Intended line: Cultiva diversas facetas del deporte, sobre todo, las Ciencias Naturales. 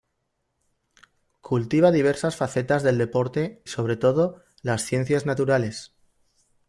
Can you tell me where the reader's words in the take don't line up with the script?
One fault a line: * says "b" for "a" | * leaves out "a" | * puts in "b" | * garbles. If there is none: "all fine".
all fine